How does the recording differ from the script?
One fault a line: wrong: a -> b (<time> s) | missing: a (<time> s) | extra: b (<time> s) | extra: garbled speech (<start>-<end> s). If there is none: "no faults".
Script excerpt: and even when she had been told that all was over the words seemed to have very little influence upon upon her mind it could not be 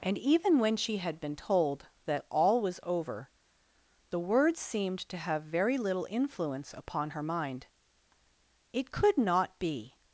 missing: upon (7.1 s)